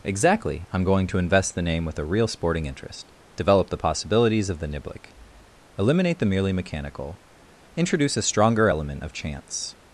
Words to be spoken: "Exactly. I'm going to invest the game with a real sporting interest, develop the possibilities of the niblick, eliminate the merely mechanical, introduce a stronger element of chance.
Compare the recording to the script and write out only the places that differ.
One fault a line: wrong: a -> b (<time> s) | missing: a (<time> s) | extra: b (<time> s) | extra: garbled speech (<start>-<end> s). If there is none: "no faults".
wrong: game -> name (1.6 s)